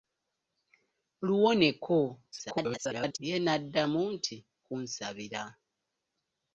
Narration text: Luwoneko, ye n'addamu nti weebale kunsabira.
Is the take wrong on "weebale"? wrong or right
wrong